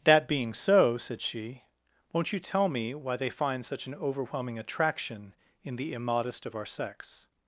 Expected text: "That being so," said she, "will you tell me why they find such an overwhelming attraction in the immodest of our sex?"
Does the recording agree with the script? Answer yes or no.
no